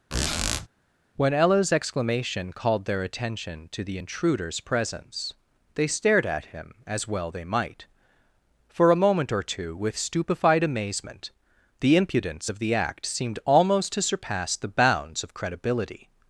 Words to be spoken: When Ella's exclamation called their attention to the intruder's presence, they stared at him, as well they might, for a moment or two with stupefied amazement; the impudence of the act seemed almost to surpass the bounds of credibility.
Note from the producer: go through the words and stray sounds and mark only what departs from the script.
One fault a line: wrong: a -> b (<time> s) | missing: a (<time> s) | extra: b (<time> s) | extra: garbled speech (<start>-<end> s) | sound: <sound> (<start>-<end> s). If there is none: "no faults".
sound: squeak (0.1-0.7 s)